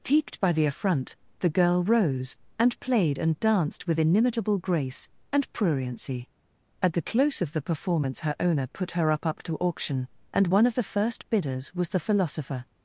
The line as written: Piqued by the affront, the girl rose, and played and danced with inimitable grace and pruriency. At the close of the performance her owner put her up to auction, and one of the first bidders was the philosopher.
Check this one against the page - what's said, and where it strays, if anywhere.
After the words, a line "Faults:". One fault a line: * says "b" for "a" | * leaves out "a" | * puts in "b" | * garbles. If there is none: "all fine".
Piqued by the affront, the girl rose, and played and danced with inimitable grace and pruriency. At the close of the performance her owner put her up up to auction, and one of the first bidders was the philosopher.
Faults:
* puts in "up"